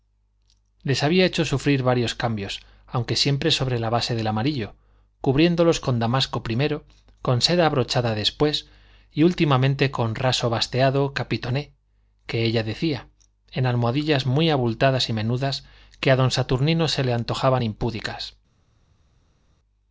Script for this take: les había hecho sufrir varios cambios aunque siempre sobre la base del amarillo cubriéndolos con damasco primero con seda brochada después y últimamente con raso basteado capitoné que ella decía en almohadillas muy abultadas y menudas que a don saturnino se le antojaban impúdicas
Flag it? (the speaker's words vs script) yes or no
no